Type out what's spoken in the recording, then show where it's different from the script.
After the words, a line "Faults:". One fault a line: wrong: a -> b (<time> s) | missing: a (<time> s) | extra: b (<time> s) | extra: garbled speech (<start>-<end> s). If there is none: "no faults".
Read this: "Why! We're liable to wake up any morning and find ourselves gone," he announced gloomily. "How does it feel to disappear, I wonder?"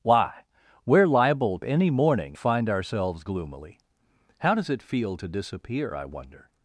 "Why! We're liable any morning find ourselves gloomily. "How does it feel to disappear, I wonder?"
Faults:
missing: to wake up (1.6 s)
missing: and (2.4 s)
missing: gone he announced (3.2 s)